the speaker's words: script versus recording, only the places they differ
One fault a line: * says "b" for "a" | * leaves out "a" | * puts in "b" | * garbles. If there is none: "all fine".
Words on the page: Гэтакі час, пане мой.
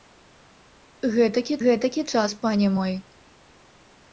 * puts in "гэтакі"